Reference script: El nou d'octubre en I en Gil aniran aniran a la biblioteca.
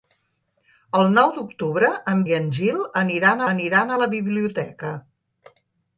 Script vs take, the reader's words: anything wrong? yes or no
no